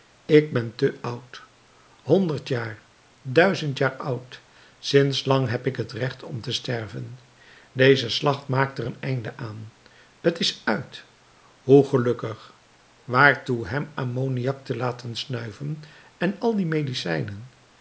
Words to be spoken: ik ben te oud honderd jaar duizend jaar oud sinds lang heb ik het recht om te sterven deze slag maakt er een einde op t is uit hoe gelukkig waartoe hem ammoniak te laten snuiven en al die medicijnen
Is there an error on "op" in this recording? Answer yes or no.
yes